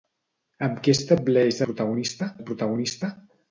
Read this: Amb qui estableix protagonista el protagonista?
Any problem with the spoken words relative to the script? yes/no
no